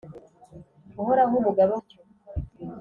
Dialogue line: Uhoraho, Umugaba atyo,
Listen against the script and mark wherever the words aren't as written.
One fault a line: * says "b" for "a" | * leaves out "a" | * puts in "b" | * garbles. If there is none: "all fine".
all fine